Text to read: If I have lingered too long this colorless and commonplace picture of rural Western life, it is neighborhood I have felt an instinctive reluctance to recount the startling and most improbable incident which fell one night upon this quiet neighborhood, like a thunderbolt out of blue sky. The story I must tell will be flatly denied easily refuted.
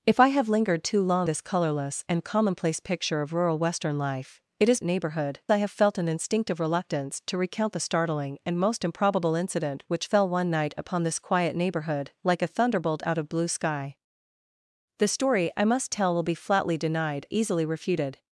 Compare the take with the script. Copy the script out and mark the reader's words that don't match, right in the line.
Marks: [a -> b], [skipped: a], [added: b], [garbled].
If I have lingered too long this colorless and commonplace picture of rural Western life, it is neighborhood I have felt an instinctive reluctance to recount the startling and most improbable incident which fell one night upon this quiet neighborhood, like a thunderbolt out of blue sky. The story I must tell will be flatly denied easily refuted.